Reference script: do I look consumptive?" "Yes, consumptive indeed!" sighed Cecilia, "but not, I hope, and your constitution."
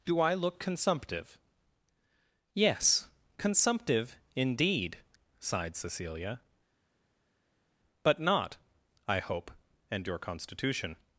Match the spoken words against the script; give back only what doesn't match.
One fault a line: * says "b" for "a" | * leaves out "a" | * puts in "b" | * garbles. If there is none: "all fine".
all fine